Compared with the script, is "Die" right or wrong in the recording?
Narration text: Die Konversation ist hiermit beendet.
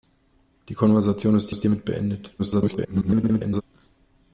right